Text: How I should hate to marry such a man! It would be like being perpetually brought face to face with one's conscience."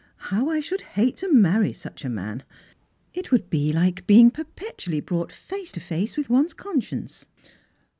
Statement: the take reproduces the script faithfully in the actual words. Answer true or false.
true